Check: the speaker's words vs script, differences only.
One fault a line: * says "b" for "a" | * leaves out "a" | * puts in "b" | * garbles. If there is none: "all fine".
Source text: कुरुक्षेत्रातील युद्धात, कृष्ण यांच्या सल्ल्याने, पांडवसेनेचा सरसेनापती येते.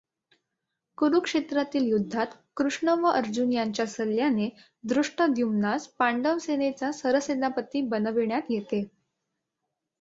* puts in "व अर्जुन"
* puts in "धृष्टद्युम्नास"
* puts in "बनविण्यात"